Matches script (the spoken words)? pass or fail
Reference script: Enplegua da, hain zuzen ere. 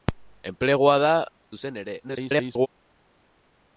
fail